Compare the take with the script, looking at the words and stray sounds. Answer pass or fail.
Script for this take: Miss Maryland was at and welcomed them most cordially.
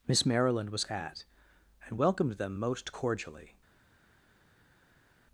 pass